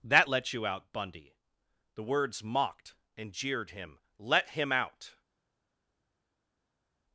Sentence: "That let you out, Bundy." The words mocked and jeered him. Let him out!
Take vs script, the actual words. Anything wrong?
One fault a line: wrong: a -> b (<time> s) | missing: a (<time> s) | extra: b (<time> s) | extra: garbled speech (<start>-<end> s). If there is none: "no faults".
no faults